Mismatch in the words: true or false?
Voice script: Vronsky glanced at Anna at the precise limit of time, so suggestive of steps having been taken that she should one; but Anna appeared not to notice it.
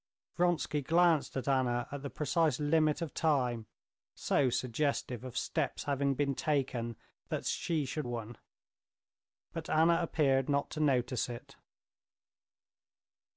false